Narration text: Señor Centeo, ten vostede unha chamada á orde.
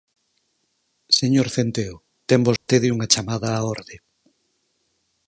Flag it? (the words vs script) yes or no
no